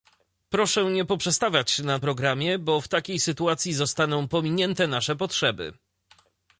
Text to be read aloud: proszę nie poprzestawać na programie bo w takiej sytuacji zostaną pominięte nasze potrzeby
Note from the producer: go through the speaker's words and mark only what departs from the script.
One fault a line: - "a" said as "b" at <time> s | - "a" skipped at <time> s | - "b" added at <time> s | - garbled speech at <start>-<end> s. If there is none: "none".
none